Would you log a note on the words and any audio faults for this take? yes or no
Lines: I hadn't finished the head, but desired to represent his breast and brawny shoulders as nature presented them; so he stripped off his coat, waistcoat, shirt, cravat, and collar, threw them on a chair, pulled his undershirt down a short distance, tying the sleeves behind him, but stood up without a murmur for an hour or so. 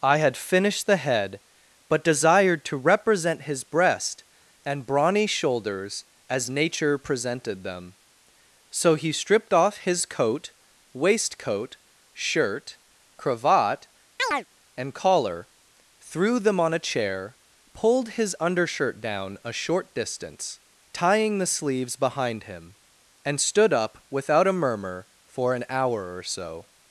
yes